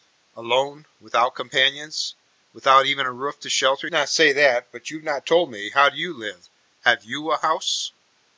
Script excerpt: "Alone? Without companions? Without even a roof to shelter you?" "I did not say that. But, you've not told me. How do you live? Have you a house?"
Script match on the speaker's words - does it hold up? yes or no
no